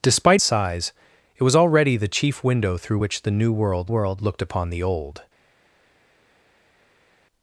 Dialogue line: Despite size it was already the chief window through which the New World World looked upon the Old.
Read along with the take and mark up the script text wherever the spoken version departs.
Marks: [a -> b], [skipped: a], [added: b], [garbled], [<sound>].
Despite size it was already the chief window through which the New World World looked upon the Old.